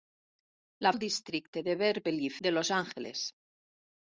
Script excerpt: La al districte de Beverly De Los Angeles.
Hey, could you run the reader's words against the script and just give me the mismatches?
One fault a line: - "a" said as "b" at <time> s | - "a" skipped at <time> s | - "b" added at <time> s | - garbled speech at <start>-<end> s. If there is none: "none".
none